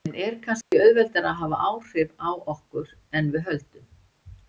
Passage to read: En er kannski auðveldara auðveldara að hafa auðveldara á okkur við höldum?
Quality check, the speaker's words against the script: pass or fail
fail